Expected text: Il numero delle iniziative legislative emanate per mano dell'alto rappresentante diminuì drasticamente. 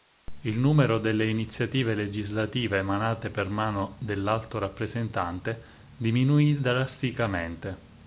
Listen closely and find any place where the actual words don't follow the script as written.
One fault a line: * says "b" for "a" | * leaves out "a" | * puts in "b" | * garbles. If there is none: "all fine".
all fine